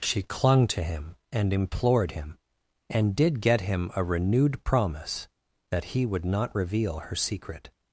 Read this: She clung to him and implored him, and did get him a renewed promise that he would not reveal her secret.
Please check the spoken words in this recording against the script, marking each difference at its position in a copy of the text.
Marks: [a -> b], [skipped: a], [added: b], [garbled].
She clung to him and implored him, and did get him a renewed promise that he would not reveal her secret.